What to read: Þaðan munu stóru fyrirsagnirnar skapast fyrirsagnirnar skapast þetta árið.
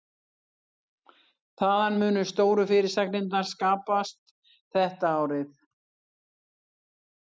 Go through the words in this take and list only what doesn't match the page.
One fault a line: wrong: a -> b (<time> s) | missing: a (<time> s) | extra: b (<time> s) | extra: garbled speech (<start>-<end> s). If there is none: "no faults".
missing: fyrirsagnirnar skapast (4.3 s)